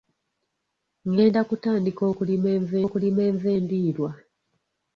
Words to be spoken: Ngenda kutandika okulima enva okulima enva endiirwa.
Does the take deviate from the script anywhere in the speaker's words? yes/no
no